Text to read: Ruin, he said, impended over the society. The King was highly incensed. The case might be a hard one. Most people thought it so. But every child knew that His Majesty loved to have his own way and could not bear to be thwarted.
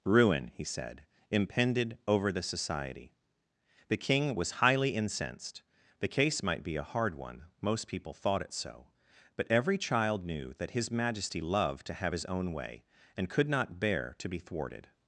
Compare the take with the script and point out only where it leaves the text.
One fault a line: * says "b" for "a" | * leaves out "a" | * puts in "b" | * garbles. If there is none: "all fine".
all fine